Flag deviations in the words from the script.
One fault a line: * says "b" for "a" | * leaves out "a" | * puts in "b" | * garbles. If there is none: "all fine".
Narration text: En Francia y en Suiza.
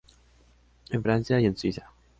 all fine